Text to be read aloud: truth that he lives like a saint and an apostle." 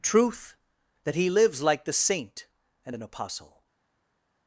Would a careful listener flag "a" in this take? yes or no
yes